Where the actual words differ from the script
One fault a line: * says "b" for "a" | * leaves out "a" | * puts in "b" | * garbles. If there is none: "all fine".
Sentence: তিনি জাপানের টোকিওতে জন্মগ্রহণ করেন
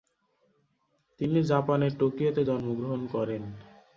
all fine